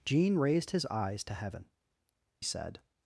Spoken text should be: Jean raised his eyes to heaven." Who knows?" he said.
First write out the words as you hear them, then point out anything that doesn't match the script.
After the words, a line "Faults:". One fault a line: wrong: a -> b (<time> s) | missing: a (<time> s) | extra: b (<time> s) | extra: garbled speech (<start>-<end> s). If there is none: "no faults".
Jean raised his eyes to heaven." Said.
Faults:
missing: Who knows he (1.6 s)